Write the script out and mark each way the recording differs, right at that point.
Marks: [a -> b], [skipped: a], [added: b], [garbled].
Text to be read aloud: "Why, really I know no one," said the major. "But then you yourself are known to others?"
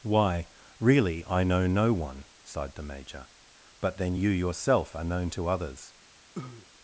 "Why, really I know no one," [said -> sighed] the major. "But then you yourself are known to others?"